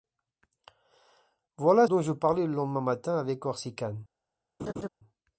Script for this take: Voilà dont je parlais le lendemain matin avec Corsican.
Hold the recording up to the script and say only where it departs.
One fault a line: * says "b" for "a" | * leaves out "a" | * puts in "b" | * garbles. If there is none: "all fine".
all fine